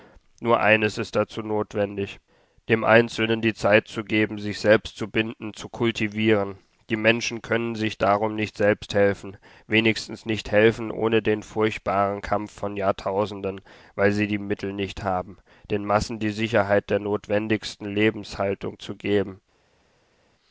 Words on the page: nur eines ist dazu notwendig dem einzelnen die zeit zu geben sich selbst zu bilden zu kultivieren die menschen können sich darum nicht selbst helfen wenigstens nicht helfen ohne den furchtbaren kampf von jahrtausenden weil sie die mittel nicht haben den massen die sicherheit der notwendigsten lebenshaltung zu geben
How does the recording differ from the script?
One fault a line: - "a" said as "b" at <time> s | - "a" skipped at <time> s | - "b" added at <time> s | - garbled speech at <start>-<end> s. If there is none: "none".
none